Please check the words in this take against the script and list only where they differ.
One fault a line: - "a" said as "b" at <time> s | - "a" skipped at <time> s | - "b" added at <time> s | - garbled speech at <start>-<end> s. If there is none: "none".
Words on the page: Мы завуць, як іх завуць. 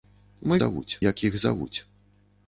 none